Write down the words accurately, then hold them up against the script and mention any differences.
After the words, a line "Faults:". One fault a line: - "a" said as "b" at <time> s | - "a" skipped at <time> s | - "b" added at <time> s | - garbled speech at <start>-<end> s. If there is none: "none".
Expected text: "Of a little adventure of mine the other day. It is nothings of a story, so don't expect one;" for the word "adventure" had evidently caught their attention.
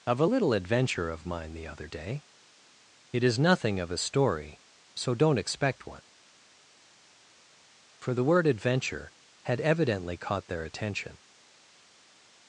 "Of a little adventure of mine the other day. It is nothing of a story, so don't expect one;" for the word "adventure" had evidently caught their attention.
Faults:
- "nothings" said as "nothing" at 3.4 s